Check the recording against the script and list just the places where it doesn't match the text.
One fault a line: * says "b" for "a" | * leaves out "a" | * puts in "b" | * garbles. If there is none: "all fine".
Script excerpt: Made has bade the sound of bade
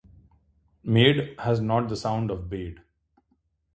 * says "not" for "bade"